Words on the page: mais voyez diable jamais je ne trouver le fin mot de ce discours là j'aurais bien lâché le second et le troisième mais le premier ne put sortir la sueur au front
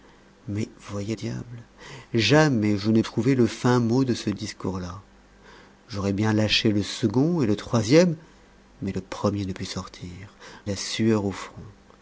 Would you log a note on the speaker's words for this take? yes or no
no